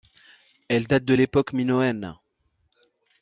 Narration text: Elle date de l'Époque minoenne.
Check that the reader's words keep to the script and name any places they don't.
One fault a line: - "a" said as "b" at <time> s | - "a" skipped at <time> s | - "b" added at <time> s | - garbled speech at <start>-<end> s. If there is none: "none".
none